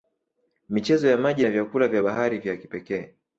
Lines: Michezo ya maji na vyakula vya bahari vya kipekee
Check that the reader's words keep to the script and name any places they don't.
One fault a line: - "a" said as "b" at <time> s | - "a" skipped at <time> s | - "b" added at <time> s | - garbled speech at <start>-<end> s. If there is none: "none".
none